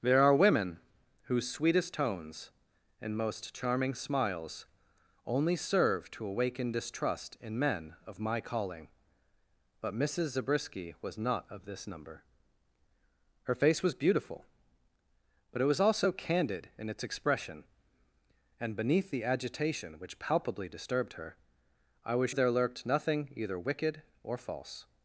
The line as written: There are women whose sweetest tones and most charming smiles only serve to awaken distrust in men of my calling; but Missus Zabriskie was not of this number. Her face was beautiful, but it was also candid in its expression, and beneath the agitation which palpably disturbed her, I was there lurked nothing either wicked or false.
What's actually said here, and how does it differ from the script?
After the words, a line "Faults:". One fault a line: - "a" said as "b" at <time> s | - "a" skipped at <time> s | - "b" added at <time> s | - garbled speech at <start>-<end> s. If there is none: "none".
There are women whose sweetest tones and most charming smiles only serve to awaken distrust in men of my calling; but Missus Zabriskie was not of this number. Her face was beautiful, but it was also candid in its expression, and beneath the agitation which palpably disturbed her, I was there lurked nothing either wicked or false.
Faults:
none